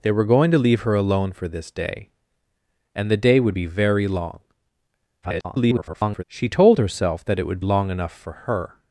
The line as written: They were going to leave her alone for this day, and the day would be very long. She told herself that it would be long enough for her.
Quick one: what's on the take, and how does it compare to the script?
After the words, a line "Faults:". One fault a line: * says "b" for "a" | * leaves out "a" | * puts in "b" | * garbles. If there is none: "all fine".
They were going to leave her alone for this day, and the day would be very long. [garbled] She told herself that it would long enough for her.
Faults:
* garbles
* leaves out "be"